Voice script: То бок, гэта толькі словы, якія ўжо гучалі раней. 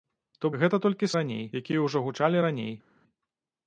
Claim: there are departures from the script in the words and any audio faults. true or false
true